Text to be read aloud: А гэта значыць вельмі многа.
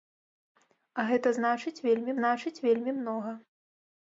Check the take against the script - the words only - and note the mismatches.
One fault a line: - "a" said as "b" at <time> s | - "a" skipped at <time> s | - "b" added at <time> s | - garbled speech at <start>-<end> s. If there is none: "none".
- "значыць вельмі" added at 2.2 s